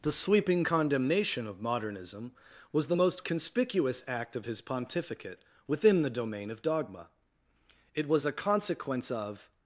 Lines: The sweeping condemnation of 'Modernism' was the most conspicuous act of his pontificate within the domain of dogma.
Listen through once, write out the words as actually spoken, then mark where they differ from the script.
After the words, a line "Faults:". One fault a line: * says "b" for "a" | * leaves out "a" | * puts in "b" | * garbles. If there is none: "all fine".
The sweeping condemnation of 'Modernism' was the most conspicuous act of his pontificate within the domain of dogma. It was a consequence of
Faults:
* puts in "It was a consequence of"